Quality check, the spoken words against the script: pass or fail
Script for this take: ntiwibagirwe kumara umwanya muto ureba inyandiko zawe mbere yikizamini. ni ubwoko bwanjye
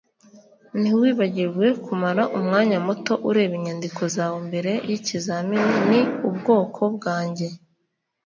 pass